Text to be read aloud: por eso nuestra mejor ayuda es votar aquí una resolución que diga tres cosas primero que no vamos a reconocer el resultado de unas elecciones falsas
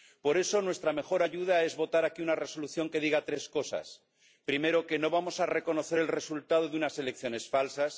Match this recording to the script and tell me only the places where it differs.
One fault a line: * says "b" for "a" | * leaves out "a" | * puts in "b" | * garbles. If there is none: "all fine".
all fine